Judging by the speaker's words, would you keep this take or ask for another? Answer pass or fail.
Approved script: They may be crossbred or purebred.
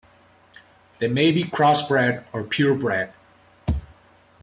pass